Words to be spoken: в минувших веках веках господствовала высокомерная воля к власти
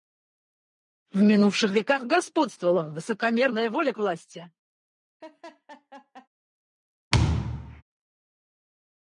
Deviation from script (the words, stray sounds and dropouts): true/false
true